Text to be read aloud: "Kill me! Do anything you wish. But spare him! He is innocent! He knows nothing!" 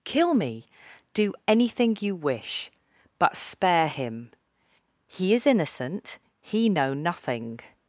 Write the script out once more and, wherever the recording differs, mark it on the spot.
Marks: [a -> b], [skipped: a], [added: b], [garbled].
"Kill me! Do anything you wish. But spare him! He is innocent! He [knows -> know] nothing!"